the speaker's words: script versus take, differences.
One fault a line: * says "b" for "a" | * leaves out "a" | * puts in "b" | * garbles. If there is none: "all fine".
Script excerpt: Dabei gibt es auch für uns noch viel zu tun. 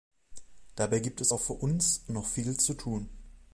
all fine